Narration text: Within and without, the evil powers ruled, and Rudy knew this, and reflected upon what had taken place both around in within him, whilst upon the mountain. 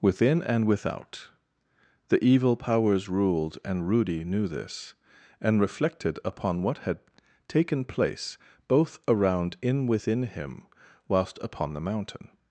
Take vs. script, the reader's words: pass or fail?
pass